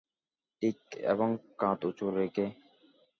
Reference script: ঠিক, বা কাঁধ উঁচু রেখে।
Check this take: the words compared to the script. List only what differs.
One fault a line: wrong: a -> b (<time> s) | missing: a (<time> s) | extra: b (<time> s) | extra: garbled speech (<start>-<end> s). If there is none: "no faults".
wrong: বা -> এবং (1.1 s)